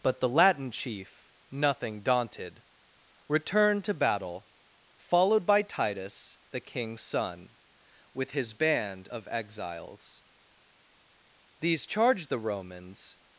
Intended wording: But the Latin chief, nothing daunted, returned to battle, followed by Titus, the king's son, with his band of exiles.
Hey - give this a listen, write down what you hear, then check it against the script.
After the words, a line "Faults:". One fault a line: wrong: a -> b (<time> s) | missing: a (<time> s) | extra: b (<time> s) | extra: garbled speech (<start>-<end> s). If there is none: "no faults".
But the Latin chief, nothing daunted, returned to battle, followed by Titus, the king's son, with his band of exiles. These charged the Romans
Faults:
extra: These charged the Romans (11.6 s)